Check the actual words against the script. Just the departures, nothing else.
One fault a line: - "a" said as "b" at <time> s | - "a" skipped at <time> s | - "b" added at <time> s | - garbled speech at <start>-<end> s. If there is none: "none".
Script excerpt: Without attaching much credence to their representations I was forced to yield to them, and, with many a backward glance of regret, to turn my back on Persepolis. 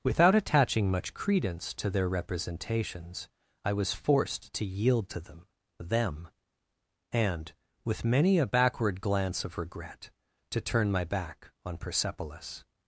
- "them" added at 5.8 s